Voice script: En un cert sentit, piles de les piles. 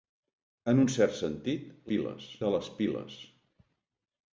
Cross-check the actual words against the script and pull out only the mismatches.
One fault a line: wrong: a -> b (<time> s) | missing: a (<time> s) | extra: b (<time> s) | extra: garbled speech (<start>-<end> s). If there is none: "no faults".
no faults